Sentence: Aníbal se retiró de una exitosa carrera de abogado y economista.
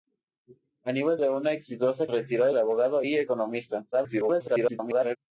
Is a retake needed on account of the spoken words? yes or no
yes